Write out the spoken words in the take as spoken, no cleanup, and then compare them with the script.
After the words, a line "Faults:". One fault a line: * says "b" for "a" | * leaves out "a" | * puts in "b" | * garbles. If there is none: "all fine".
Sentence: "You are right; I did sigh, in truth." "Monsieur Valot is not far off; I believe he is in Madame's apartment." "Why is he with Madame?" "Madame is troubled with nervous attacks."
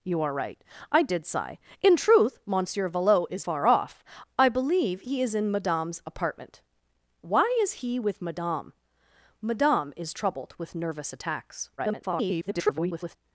"You are right; I did sigh, in truth." "Monsieur Valot is far off; I believe he is in Madame's apartment." "Why is he with Madame?" "Madame is troubled with nervous attacks." [garbled]
Faults:
* leaves out "not"
* garbles